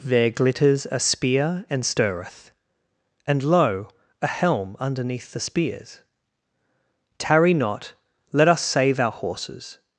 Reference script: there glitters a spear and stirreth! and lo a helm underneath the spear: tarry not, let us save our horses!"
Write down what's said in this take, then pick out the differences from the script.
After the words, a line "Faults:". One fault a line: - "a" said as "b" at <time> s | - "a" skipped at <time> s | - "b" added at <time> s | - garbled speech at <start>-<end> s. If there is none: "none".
there glitters a spear and stirreth! and lo a helm underneath the spears: tarry not, let us save our horses!"
Faults:
- "spear" said as "spears" at 5.4 s